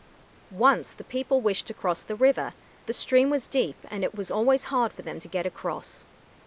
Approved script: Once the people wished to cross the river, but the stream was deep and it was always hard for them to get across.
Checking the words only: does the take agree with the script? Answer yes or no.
no